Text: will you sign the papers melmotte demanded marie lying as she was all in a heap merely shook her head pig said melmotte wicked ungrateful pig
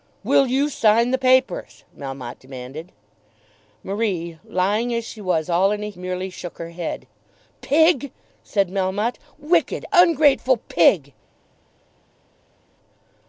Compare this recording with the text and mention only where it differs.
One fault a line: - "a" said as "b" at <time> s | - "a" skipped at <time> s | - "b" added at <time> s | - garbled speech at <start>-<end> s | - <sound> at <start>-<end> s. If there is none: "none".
- "heap" skipped at 5.9 s